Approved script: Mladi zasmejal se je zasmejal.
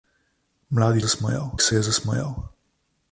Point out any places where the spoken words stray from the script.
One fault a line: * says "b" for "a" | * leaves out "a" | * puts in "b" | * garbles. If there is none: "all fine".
all fine